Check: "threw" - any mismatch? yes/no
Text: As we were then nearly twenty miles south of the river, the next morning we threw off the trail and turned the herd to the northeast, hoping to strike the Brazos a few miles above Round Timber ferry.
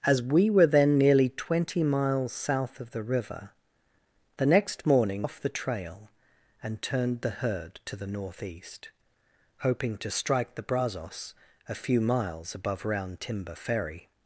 yes